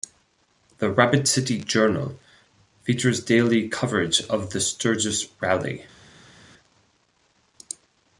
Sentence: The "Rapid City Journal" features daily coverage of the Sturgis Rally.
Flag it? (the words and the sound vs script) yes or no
no